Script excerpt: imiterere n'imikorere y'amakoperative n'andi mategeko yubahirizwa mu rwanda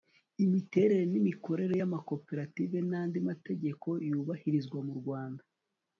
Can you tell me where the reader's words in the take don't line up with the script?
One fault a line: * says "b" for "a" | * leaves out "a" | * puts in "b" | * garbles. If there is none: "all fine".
all fine